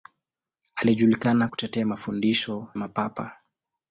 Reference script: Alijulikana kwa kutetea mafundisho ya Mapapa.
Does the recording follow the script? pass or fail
fail